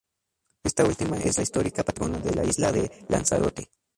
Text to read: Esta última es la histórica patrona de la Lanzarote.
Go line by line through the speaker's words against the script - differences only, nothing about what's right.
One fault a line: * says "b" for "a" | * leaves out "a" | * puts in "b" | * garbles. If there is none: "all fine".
* puts in "isla de"